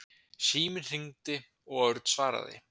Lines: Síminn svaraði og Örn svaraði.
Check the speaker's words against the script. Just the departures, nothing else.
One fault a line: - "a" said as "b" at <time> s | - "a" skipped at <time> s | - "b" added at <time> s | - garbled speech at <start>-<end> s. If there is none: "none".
- "svaraði" said as "hringdi" at 0.9 s